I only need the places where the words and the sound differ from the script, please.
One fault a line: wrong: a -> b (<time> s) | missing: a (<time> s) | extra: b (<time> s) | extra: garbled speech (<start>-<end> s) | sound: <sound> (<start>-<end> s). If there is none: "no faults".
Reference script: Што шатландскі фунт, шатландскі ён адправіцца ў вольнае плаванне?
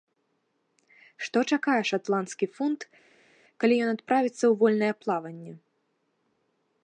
extra: чакае (1.6 s)
wrong: шатландскі -> калі (3.6 s)